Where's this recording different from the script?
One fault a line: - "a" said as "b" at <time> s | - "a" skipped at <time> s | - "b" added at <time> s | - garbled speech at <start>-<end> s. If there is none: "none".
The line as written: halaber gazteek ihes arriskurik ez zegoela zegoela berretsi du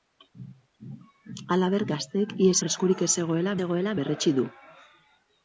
none